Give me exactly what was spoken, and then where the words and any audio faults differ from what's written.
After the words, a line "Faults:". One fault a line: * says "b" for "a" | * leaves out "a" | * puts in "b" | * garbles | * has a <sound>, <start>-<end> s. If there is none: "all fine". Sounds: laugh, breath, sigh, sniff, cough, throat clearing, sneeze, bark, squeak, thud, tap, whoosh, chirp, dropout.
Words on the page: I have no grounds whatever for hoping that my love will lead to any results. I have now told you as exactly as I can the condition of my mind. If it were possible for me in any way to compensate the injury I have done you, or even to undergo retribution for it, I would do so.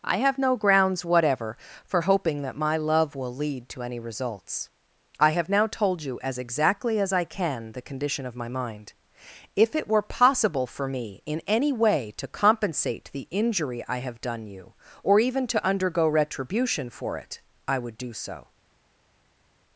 I have no grounds whatever for hoping that my love will lead to any results. I have now told you as exactly as I can the condition of my mind. If it were possible for me in any way to compensate the injury I have done you, or even to undergo retribution for it, I would do so.
Faults:
all fine